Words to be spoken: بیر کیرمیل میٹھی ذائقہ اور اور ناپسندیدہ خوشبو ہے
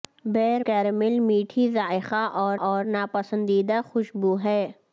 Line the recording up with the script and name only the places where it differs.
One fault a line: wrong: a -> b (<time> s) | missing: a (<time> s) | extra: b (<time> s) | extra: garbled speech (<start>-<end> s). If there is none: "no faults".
no faults